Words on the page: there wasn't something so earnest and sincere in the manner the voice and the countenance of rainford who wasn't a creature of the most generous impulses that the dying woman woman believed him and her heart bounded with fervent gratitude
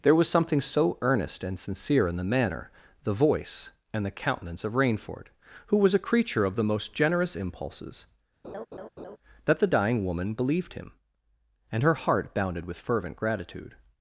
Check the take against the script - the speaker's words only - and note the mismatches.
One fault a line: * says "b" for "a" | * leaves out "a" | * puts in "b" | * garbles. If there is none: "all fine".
* says "was" for "wasn't"
* says "was" for "wasn't"
* leaves out "woman"